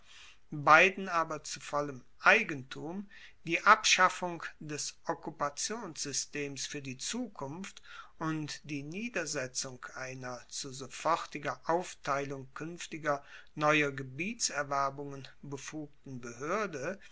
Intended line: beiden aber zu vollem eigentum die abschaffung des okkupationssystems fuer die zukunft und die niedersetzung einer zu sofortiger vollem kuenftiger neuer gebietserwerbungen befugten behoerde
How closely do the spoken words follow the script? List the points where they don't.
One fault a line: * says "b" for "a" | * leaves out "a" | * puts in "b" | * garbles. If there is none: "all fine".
* says "aufteilung" for "vollem"